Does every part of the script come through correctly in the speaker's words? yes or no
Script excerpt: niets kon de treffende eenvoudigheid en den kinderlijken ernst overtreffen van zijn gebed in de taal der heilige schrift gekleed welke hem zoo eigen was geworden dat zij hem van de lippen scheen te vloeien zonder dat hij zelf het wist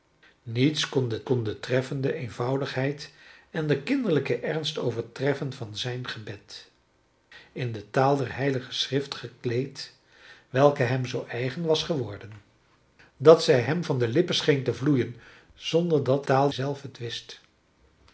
no